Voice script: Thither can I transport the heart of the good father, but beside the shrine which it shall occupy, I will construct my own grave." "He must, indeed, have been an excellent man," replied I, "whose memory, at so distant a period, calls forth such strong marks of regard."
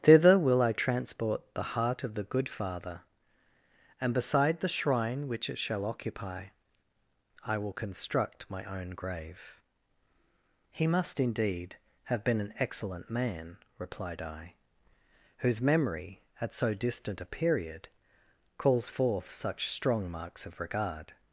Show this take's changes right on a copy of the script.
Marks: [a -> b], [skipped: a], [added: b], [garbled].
Thither [can -> will] I transport the heart of the good father, [but -> and] beside the shrine which it shall occupy, I will construct my own grave." "He must, indeed, have been an excellent man," replied I, "whose memory, at so distant a period, calls forth such strong marks of regard."